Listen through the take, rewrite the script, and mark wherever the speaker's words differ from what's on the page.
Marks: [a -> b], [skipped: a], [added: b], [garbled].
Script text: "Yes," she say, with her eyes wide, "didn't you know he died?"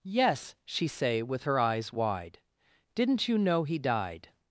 "Yes," she say, with her eyes wide, "didn't you know he died?"